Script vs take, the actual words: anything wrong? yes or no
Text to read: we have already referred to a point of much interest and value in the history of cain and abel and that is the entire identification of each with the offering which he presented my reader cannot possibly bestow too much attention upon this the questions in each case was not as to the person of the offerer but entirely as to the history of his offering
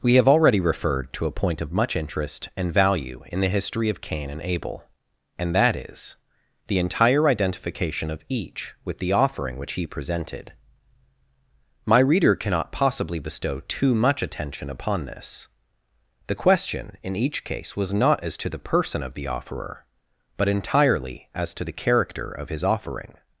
yes